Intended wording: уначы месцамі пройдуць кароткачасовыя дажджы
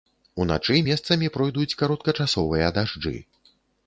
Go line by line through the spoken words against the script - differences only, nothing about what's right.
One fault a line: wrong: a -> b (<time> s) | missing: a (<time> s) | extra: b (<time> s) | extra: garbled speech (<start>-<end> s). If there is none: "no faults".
no faults